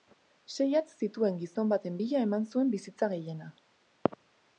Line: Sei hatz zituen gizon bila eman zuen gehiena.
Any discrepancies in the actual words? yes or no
yes